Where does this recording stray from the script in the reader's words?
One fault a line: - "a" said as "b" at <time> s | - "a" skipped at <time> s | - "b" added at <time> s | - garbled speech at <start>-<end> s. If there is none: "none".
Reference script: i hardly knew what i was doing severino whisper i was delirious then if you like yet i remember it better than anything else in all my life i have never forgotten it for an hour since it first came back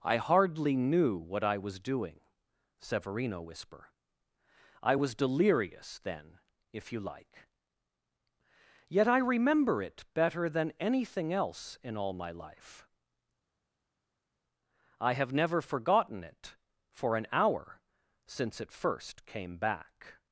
none